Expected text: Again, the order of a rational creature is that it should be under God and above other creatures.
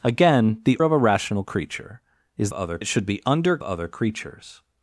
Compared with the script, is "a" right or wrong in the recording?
right